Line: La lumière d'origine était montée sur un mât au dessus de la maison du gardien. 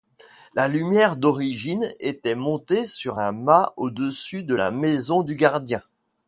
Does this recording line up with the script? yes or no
yes